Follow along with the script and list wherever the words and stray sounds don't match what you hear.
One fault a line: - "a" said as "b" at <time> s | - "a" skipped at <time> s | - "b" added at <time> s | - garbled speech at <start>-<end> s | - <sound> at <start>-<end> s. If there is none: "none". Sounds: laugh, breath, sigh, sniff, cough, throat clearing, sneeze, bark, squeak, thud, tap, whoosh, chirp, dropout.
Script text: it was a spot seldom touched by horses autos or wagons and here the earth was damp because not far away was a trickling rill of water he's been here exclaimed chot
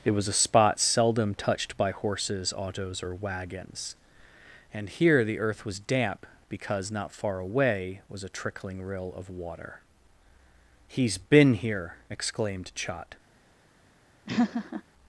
- laugh at 14.3-14.8 s